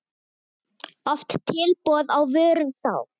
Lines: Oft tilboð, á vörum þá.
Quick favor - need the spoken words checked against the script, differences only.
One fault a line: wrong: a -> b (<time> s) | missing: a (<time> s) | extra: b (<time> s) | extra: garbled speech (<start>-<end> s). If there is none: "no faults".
no faults